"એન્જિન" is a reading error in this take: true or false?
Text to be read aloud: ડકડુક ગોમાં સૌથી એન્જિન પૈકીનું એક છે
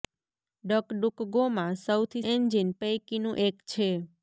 false